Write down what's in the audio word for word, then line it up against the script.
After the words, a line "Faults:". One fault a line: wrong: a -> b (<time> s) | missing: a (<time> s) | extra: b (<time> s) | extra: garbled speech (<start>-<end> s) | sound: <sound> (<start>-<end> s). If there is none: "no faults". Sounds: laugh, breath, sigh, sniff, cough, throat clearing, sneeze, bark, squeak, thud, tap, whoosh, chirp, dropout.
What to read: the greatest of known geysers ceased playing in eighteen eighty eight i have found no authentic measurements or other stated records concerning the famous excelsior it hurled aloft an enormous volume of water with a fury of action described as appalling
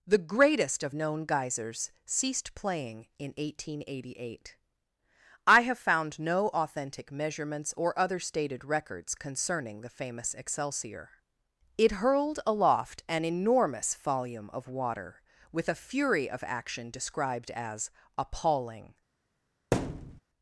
the greatest of known geysers ceased playing in eighteen eighty eight i have found no authentic measurements or other stated records concerning the famous excelsior it hurled aloft an enormous volume of water with a fury of action described as appalling
Faults:
sound: thud (19.7-20.2 s)